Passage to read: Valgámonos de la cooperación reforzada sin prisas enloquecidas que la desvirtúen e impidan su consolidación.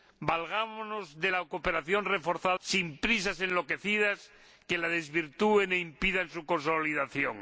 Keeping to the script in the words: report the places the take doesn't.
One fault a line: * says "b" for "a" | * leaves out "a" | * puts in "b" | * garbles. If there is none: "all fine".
all fine